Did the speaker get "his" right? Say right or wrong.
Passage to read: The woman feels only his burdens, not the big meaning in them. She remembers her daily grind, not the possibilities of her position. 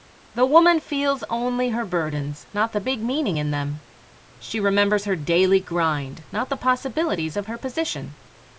wrong